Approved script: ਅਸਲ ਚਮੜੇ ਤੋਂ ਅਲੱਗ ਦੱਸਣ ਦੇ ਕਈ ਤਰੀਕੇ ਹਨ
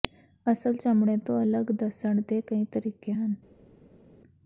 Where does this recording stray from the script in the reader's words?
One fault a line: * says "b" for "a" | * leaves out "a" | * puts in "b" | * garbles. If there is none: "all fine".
all fine